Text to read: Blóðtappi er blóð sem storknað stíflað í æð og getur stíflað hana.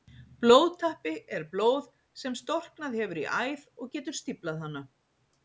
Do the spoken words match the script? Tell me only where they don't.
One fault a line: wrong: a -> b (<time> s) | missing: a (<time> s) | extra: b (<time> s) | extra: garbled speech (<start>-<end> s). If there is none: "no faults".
wrong: stíflað -> hefur (3.0 s)